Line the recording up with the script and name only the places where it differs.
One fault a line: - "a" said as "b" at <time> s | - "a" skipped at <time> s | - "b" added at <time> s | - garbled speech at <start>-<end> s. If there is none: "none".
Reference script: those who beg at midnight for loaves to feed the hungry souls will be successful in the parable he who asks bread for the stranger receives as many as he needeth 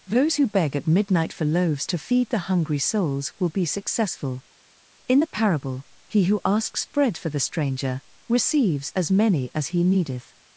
none